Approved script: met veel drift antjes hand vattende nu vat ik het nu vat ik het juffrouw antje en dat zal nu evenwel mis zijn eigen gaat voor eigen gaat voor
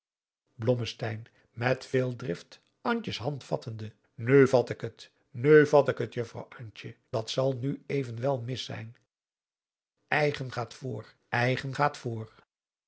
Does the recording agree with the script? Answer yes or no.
no